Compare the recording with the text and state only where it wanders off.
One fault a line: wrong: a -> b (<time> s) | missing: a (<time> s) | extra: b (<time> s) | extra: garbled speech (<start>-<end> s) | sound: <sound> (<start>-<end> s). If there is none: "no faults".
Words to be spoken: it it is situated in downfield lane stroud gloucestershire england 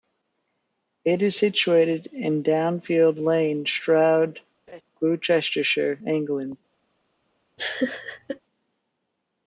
missing: it (1.2 s)
sound: laugh (4.7-4.8 s)
sound: laugh (7.6-8.4 s)